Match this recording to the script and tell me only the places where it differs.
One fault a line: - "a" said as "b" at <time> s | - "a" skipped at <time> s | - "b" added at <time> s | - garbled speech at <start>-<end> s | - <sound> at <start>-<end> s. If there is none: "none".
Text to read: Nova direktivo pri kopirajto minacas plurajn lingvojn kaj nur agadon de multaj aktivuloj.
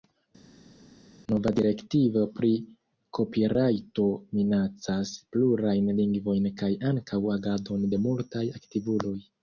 - "nur" said as "ankaŭ" at 6.9 s